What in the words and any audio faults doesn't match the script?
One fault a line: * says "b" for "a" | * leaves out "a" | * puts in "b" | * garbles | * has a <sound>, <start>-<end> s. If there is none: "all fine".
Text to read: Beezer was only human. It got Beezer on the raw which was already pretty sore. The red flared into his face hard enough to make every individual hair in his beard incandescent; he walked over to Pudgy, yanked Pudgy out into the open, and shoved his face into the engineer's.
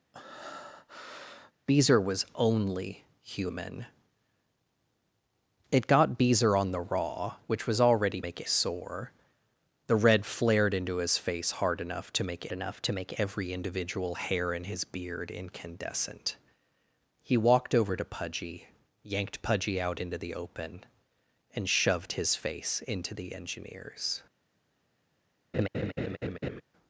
* has a breath, 0.1-1.5 s
* says "make" for "pretty"
* puts in "enough to make"
* has a laugh, 25.5-26.6 s